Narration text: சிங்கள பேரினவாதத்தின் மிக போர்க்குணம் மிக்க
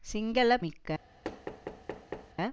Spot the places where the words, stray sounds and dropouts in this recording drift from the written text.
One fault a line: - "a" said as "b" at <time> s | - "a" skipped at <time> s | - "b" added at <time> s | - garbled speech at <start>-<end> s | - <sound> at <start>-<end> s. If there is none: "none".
- "பேரினவாதத்தின் மிக போர்க்குணம்" skipped at 0.6 s
- thud at 1.2-2.3 s